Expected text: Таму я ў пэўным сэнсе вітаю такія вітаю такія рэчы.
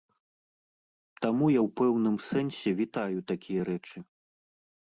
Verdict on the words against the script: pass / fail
fail